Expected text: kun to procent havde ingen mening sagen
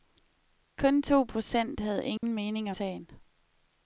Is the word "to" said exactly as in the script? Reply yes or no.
yes